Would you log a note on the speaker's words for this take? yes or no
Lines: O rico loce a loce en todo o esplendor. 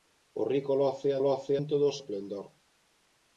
no